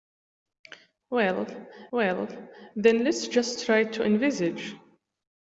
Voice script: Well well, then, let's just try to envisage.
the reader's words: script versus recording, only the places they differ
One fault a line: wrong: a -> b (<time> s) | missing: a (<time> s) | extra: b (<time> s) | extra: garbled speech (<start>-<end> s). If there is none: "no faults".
no faults